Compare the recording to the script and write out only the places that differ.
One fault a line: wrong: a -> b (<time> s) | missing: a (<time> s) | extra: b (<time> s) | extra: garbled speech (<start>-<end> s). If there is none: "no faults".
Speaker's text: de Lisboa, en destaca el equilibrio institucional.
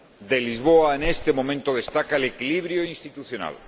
extra: este momento (1.0 s)